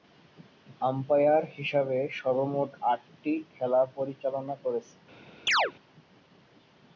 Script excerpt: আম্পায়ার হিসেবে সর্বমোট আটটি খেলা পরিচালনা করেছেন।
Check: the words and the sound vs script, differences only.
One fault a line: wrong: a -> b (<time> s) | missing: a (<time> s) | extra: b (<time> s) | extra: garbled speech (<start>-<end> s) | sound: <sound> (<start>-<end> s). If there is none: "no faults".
sound: chirp (5.5-5.7 s)